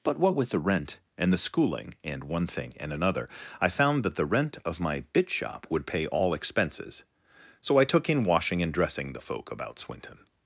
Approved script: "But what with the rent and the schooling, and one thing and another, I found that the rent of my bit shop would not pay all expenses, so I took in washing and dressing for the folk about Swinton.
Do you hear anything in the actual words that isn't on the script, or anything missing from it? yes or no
yes